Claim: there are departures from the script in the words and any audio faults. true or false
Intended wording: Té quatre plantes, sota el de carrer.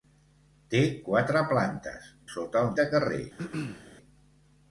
true